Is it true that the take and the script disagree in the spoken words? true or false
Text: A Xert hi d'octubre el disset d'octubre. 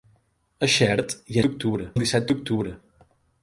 false